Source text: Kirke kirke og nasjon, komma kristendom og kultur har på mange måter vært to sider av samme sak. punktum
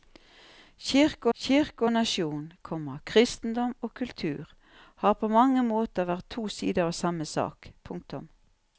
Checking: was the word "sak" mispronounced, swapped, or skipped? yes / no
no